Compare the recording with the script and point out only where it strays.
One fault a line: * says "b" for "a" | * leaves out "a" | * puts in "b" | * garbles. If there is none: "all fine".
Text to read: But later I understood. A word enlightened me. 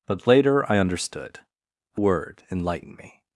all fine